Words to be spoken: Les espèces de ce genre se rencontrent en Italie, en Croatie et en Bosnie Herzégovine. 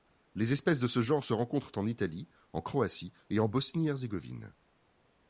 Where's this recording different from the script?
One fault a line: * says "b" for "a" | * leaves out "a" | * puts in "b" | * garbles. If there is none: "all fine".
all fine